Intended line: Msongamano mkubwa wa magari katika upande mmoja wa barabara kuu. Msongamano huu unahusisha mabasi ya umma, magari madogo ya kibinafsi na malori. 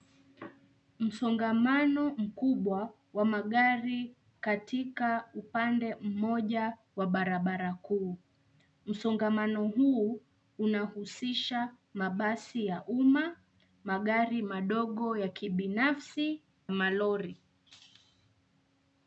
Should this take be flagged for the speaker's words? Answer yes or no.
yes